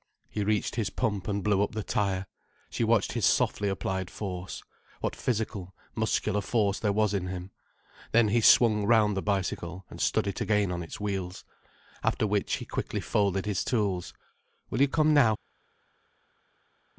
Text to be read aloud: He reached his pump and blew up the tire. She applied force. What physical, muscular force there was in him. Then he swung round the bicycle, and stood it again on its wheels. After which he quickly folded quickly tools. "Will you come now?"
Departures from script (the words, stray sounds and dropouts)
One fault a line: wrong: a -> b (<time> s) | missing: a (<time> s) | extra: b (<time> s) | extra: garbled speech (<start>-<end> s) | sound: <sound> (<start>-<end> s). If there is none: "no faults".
extra: watched his softly (2.8 s)
wrong: quickly -> his (13.4 s)